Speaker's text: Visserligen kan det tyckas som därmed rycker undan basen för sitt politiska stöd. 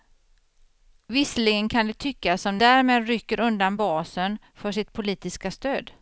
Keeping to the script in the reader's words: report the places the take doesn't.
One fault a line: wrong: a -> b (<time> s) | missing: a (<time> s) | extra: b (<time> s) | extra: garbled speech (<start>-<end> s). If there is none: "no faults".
no faults